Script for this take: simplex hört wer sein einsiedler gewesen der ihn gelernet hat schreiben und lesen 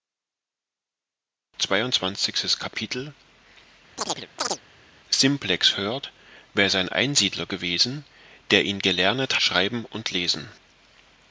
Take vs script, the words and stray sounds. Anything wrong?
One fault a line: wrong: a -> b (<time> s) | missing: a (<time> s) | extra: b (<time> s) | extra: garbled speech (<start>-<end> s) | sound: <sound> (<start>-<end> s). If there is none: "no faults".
sound: chirp (4.0-4.6 s)
missing: hat (9.4 s)